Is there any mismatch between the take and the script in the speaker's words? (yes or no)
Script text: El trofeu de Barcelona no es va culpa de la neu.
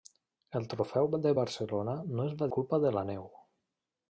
no